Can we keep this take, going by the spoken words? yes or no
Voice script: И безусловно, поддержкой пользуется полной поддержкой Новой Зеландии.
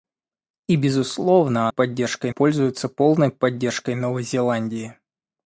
yes